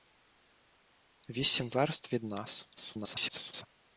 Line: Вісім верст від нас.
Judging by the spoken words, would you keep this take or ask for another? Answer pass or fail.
fail